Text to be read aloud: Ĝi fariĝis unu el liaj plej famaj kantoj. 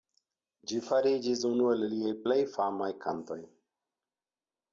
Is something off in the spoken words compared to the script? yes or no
no